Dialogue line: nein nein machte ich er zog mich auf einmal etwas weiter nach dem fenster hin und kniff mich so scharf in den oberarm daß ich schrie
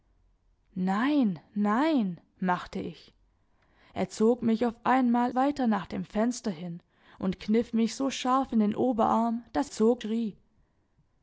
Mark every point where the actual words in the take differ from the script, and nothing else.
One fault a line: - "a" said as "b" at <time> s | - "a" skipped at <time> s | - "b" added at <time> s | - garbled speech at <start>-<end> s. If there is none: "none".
- "etwas" skipped at 5.3 s
- "ich" said as "zog" at 9.7 s